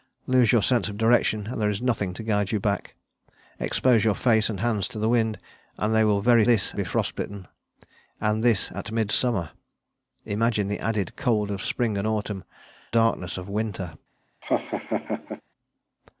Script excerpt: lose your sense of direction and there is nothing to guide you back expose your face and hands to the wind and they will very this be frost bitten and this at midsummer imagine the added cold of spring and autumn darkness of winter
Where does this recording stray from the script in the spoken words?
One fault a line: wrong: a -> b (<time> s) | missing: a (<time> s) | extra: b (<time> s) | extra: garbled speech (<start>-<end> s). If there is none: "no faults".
no faults